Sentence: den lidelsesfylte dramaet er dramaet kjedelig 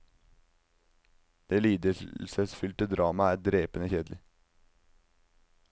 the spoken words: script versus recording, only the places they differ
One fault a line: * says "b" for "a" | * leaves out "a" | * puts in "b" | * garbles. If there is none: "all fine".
* says "det" for "den"
* says "drepende" for "dramaet"